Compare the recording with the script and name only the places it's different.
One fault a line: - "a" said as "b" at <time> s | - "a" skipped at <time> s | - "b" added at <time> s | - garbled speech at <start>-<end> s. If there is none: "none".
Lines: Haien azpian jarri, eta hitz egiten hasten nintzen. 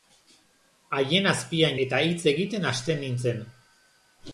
- "jarri" skipped at 1.8 s